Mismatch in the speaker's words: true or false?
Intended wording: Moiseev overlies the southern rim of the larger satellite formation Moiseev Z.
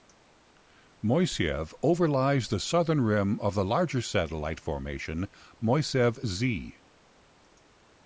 false